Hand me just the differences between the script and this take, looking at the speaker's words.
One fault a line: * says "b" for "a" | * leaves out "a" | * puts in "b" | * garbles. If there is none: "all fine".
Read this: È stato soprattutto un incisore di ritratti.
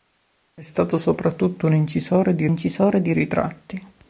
* puts in "incisore di"